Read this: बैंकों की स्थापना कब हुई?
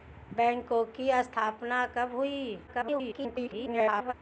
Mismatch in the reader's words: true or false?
true